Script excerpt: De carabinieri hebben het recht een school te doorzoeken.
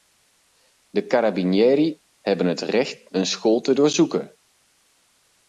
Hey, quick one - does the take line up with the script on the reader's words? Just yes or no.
yes